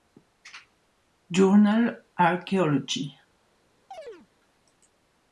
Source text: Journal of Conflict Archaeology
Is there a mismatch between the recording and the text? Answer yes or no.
yes